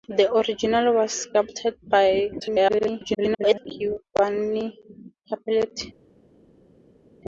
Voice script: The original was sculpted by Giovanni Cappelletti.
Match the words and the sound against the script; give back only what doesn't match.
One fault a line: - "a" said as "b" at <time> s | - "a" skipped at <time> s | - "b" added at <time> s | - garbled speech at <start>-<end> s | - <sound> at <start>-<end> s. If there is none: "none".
- garbled speech at 2.4-3.7 s